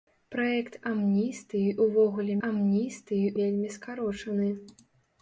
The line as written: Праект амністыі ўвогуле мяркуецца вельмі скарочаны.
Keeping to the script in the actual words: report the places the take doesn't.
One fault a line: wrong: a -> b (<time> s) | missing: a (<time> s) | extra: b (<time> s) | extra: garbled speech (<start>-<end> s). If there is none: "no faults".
wrong: мяркуецца -> амністыі (2.5 s)